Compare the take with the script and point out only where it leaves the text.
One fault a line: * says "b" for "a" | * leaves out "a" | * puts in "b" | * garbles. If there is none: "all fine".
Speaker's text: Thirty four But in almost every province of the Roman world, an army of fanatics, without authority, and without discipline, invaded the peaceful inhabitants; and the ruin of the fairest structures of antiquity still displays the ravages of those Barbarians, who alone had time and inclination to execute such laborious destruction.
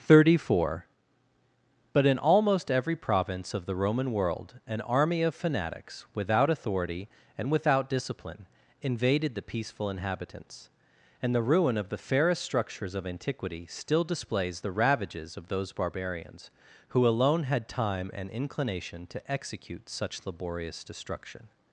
all fine